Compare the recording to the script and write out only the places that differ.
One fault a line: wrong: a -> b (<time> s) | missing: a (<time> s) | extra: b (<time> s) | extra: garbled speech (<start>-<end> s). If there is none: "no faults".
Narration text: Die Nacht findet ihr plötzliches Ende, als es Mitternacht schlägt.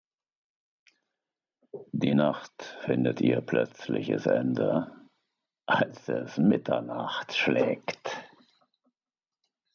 no faults